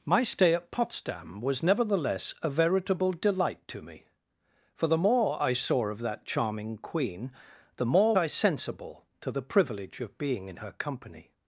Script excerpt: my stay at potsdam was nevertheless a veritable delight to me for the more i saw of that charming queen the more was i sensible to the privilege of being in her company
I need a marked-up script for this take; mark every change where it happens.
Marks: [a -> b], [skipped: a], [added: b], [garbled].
my stay at potsdam was nevertheless a veritable delight to me for the more i saw of that charming queen the more [skipped: was] i sensible to the privilege of being in her company